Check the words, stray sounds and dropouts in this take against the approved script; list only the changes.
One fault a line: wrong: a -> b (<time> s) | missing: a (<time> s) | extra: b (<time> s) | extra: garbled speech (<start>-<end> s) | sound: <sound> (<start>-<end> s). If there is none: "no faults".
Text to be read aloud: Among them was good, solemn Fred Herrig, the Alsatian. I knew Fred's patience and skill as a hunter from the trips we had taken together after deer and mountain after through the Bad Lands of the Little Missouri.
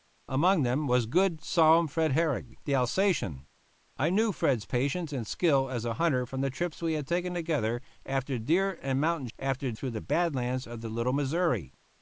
no faults